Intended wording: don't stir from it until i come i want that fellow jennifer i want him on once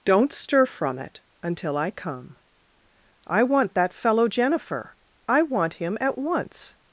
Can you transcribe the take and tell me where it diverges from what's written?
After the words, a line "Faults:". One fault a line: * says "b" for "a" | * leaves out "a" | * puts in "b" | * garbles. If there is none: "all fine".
don't stir from it until i come i want that fellow jennifer i want him at once
Faults:
* says "at" for "on"